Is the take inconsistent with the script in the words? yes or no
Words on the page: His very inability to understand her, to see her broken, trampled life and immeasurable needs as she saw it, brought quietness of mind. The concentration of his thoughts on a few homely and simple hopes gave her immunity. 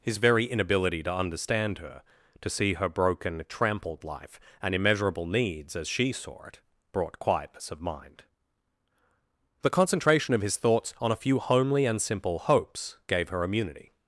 no